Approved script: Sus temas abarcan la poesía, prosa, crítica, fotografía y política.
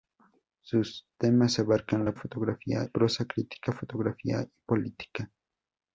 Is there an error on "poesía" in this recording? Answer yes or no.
yes